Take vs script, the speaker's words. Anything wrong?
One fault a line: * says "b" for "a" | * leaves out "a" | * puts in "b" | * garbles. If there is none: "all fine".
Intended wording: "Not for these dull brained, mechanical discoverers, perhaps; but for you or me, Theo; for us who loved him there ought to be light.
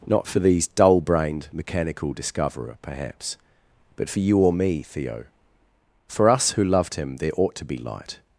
* says "discoverer" for "discoverers"